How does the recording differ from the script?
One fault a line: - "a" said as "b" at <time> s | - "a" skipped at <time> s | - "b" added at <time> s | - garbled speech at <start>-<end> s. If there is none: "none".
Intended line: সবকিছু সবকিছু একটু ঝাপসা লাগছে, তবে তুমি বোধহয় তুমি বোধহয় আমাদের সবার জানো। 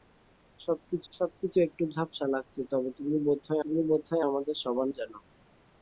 none